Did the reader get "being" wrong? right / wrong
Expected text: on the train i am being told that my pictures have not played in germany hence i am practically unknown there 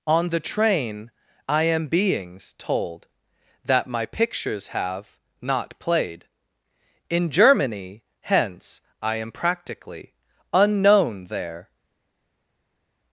wrong